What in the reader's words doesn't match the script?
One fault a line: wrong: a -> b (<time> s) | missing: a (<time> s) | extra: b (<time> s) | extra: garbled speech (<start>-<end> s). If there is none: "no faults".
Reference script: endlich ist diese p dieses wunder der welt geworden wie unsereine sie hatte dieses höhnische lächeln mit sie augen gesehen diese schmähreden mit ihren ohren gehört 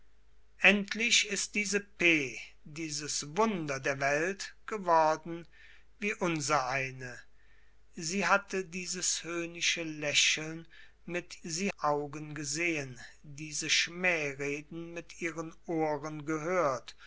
no faults